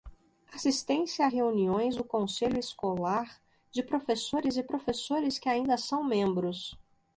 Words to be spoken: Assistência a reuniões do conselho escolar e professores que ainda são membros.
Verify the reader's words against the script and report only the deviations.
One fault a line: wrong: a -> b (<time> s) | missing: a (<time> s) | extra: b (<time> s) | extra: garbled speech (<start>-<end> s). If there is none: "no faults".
extra: de professores (3.7 s)